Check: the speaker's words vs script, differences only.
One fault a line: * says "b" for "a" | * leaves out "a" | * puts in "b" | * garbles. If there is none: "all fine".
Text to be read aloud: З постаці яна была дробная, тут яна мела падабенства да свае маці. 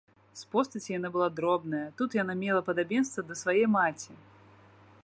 all fine